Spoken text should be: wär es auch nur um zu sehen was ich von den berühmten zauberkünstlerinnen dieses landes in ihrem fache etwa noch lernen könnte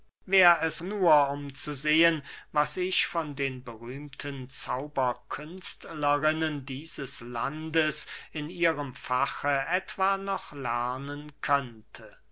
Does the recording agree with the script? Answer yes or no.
no